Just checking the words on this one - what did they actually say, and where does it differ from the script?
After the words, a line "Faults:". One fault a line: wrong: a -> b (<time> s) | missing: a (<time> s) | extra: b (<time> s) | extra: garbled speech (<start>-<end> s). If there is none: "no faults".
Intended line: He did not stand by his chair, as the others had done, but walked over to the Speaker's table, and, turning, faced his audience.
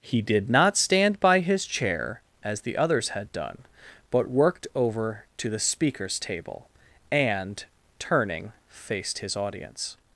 He did not stand by his chair, as the others had done, but worked over to the Speaker's table, and, turning, faced his audience.
Faults:
wrong: walked -> worked (4.3 s)